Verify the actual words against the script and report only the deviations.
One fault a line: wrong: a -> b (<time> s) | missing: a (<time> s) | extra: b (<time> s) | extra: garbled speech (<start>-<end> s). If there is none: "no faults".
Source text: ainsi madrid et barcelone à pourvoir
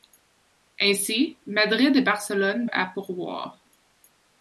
no faults